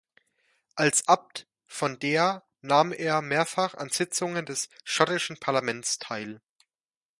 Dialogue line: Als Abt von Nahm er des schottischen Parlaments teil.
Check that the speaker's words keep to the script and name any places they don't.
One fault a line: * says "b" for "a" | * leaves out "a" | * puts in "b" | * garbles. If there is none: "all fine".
* puts in "Deer"
* puts in "mehrfach an Sitzungen"